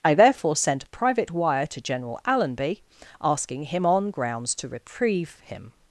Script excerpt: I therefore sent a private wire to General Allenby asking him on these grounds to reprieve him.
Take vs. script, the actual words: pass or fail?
fail